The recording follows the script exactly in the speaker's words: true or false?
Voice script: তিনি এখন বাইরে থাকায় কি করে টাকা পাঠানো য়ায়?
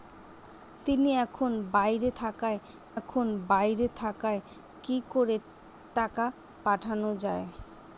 false